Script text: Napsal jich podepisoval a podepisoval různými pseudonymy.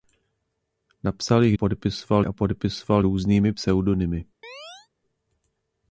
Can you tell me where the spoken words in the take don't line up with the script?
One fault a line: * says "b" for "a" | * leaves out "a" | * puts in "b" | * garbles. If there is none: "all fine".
all fine